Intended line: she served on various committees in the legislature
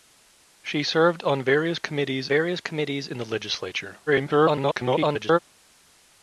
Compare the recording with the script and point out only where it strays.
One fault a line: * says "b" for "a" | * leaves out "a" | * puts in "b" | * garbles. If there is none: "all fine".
* puts in "various committees"
* garbles